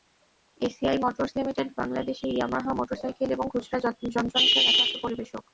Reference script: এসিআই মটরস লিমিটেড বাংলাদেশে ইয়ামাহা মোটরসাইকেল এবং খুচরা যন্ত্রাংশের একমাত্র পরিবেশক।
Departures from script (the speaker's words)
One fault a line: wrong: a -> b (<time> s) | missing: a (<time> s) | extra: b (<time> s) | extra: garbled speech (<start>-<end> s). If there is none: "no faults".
no faults